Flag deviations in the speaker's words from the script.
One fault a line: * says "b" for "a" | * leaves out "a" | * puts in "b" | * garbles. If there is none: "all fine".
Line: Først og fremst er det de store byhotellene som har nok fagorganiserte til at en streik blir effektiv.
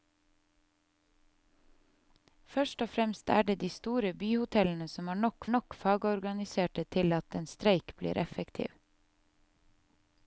* puts in "nok"